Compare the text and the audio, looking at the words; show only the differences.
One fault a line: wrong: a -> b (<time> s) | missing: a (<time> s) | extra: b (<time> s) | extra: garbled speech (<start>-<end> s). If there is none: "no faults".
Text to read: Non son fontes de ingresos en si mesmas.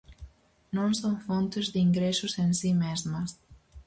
no faults